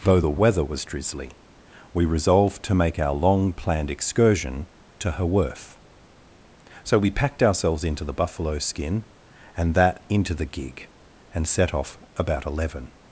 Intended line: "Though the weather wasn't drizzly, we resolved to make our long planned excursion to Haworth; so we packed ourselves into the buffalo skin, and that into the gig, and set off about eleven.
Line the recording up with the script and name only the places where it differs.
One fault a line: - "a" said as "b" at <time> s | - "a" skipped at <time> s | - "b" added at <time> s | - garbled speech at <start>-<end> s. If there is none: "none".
- "wasn't" said as "was" at 0.6 s